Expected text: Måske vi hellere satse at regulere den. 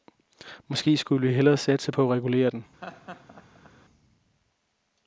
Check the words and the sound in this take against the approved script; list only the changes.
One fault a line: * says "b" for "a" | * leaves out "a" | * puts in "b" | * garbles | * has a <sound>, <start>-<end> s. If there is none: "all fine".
* puts in "skulle"
* puts in "på"
* has a laugh, 2.8-3.7 s